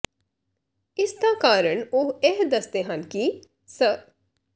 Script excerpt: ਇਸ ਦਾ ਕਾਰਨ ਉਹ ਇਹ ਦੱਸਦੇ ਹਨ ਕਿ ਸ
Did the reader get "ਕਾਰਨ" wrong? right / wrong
right